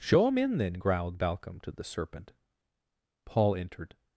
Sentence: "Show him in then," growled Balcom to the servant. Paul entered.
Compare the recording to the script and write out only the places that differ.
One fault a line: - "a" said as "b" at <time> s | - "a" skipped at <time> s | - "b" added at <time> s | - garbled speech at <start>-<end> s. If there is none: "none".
- "servant" said as "serpent" at 1.8 s